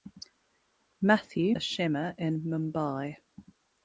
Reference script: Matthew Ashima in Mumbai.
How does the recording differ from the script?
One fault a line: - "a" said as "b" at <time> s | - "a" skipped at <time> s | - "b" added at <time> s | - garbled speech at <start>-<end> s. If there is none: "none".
none